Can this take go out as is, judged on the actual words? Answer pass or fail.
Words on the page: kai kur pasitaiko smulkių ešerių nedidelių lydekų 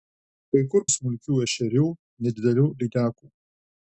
fail